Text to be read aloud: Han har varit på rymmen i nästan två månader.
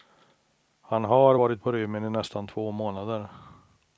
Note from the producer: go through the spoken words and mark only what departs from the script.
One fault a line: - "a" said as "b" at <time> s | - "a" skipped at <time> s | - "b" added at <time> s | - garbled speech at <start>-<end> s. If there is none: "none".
none